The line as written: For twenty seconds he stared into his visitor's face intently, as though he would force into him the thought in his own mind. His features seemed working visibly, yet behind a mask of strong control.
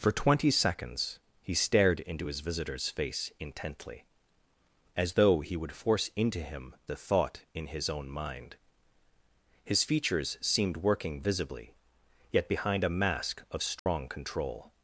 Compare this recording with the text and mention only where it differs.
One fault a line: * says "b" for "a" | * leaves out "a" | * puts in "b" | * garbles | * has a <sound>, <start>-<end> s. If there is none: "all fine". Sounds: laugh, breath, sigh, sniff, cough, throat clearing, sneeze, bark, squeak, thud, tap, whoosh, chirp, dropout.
* has a dropout, 13.8-13.9 s